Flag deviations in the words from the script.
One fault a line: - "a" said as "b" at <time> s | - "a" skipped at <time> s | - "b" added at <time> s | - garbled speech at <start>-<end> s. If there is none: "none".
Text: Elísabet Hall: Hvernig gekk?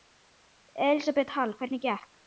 none